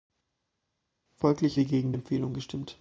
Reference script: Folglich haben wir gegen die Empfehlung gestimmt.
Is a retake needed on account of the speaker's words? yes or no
yes